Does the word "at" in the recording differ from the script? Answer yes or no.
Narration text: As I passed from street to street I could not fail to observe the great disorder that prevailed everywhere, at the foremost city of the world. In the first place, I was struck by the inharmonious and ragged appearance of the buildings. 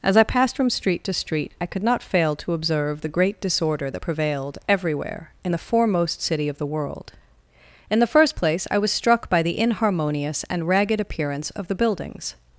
yes